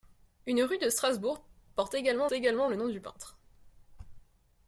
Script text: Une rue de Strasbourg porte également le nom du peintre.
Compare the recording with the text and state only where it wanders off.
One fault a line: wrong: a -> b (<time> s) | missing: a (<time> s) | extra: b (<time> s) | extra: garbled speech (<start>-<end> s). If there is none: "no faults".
extra: également (2.3 s)